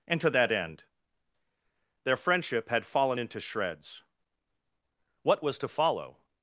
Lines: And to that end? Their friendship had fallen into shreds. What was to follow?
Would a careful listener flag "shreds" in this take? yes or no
no